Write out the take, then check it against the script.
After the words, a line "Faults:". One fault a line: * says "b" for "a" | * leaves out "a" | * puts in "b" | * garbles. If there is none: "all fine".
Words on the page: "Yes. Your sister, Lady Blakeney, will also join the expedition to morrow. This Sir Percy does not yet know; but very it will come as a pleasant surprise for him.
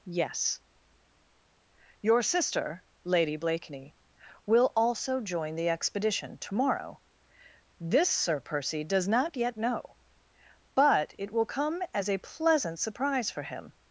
"Yes. Your sister, Lady Blakeney, will also join the expedition to morrow. This Sir Percy does not yet know; but it will come as a pleasant surprise for him.
Faults:
* leaves out "very"